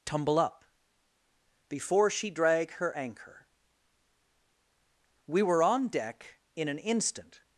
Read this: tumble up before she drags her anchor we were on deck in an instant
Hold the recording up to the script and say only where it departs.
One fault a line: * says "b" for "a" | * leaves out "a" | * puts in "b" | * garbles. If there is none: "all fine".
* says "drag" for "drags"